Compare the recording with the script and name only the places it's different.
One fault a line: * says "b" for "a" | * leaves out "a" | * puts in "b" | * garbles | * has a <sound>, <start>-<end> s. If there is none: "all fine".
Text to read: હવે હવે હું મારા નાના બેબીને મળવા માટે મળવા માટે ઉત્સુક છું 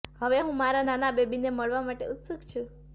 * leaves out "હવે"
* leaves out "મળવા માટે"